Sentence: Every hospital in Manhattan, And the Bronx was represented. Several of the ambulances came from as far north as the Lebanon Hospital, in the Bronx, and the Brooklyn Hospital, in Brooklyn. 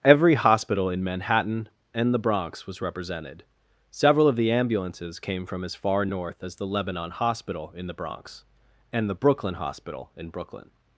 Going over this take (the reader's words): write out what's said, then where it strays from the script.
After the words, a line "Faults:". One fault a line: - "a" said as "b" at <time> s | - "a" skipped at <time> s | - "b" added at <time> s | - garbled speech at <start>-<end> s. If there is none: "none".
Every hospital in Manhattan, And the Bronx was represented. Several of the ambulances came from as far north as the Lebanon Hospital, in the Bronx, and the Brooklyn Hospital, in Brooklyn.
Faults:
none